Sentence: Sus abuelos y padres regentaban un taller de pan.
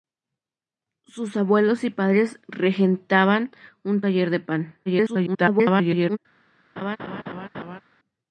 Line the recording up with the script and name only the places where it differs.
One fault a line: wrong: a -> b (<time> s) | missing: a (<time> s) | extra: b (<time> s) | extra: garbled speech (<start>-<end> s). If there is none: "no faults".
extra: garbled speech (4.9-6.2 s)